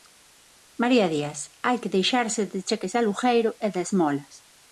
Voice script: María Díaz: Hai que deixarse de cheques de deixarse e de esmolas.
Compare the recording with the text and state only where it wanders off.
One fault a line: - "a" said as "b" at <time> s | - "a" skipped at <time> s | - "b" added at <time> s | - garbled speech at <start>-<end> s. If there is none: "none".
- "deixarse" said as "alugueiro" at 3.0 s